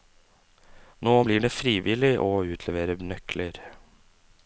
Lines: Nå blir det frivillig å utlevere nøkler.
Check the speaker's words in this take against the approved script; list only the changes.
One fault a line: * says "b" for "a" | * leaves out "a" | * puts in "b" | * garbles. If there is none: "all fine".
all fine